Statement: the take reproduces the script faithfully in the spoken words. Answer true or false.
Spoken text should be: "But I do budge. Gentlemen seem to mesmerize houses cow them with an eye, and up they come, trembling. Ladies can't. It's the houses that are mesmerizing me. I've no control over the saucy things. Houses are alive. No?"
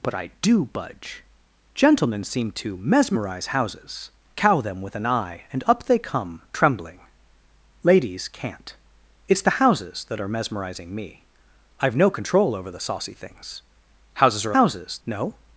false